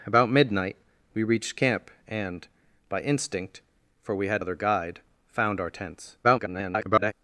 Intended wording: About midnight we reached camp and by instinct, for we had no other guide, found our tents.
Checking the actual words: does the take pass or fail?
fail